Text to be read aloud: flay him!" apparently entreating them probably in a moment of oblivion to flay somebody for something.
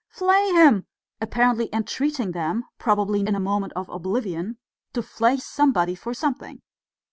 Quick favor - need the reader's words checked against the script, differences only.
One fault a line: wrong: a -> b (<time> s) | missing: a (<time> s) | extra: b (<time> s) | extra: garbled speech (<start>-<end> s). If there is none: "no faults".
no faults